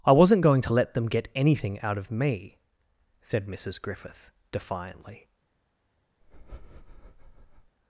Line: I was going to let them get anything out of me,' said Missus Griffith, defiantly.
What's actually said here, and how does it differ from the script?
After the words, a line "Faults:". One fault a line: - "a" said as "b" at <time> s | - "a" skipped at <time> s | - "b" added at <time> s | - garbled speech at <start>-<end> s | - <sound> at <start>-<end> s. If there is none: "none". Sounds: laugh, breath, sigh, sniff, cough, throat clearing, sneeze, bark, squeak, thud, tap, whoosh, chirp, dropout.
I wasn't going to let them get anything out of me,' said Missus Griffith, defiantly.
Faults:
- "was" said as "wasn't" at 0.1 s
- breath at 6.2-7.8 s